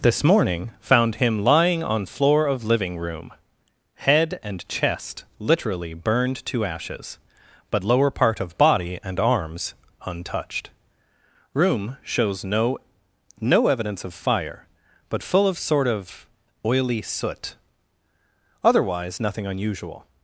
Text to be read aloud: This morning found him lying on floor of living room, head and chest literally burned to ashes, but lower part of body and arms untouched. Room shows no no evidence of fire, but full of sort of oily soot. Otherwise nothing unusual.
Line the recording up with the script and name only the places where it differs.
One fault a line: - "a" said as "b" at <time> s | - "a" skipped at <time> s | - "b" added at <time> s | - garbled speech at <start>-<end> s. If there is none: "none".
none